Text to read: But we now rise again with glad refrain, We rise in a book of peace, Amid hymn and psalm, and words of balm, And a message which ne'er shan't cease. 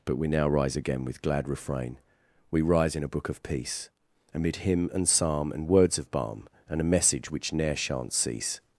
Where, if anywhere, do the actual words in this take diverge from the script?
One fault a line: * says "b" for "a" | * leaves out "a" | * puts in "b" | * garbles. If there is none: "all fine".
all fine